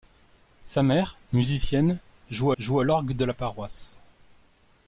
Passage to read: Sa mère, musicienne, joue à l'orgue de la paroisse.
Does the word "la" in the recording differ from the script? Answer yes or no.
no